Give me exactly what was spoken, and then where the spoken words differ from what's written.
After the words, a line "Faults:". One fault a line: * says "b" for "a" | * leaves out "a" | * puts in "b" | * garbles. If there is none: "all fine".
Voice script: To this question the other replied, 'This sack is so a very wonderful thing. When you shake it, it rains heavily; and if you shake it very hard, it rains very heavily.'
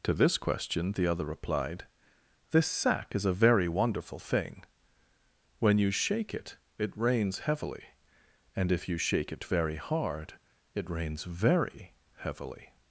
To this question the other replied, 'This sack is a very wonderful thing. When you shake it, it rains heavily; and if you shake it very hard, it rains very heavily.'
Faults:
* leaves out "so"